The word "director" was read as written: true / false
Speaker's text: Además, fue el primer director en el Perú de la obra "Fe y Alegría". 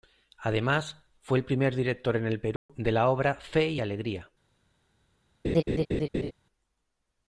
true